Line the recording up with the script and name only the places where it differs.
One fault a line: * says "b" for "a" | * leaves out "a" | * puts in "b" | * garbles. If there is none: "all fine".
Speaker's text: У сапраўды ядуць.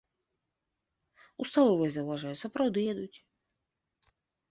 * puts in "сталовай заўважаю"